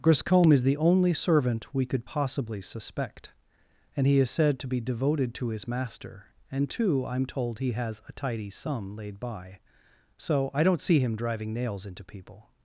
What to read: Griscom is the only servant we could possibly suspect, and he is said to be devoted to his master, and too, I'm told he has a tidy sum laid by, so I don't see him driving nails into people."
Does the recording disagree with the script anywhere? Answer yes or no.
no